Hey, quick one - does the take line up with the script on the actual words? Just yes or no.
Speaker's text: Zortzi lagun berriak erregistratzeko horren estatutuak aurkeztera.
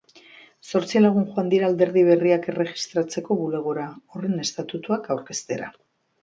no